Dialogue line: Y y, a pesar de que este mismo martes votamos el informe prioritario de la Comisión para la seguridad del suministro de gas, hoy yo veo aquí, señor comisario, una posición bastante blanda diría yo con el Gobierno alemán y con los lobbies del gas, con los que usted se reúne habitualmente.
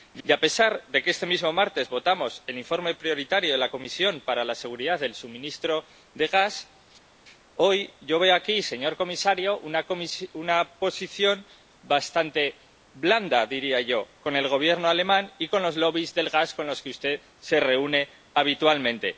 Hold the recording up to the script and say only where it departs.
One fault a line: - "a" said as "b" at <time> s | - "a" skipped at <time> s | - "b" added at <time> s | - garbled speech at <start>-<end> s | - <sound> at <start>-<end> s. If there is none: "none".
none